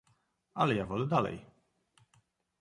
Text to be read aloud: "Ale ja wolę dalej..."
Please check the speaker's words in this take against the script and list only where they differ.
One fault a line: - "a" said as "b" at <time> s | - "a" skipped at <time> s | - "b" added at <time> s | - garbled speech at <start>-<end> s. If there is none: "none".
none